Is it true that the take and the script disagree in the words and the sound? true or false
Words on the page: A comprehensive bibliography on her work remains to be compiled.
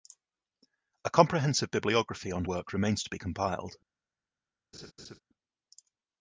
true